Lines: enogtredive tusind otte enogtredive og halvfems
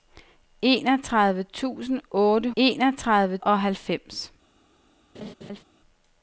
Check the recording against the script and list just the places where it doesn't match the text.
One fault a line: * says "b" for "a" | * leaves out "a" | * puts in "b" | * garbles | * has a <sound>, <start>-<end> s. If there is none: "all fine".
* has a laugh, 5.1-5.6 s